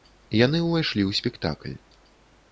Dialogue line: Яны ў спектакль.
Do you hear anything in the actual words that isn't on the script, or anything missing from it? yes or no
yes